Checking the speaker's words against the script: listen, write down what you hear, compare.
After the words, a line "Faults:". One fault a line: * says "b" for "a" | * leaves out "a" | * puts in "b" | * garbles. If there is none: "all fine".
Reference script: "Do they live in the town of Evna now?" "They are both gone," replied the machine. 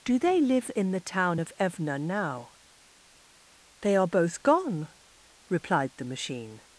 "Do they live in the town of Evna now?" "They are both gone," replied the machine.
Faults:
all fine